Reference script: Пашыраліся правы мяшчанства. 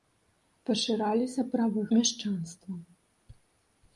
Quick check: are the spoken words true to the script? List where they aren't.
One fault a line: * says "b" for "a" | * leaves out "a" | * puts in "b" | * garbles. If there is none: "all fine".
all fine